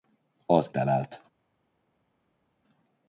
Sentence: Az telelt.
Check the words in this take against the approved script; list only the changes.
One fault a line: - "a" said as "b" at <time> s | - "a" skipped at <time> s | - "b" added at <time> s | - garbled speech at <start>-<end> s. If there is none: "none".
none